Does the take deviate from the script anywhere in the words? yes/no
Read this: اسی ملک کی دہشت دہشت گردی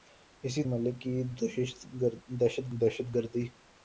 no